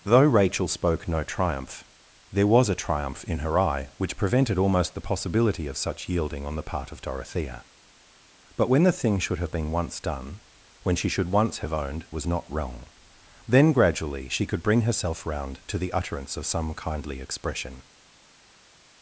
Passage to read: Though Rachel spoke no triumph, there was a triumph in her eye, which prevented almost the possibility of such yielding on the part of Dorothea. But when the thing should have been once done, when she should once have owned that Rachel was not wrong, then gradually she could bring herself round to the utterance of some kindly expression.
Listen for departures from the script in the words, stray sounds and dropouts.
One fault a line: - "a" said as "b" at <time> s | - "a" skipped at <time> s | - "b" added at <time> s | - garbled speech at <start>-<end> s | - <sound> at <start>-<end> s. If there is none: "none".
- "that Rachel" skipped at 12.1 s